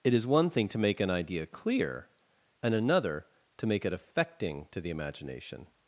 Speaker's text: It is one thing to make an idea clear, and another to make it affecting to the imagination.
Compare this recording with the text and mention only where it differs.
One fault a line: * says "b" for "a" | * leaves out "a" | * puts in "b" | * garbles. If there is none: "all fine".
all fine